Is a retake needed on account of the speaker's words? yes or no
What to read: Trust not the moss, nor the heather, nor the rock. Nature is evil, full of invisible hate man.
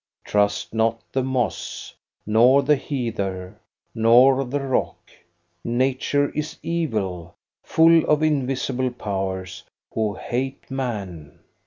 yes